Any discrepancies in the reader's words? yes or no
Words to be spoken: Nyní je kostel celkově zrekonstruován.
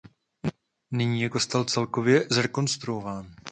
no